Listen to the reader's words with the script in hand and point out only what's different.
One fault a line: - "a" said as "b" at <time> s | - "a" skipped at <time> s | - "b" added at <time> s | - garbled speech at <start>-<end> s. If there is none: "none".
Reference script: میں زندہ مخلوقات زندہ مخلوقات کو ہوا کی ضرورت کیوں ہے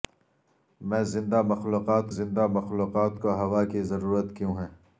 none